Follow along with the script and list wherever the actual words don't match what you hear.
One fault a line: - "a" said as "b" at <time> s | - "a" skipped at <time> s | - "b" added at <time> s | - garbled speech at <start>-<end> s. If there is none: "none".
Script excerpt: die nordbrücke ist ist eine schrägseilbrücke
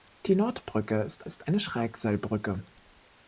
none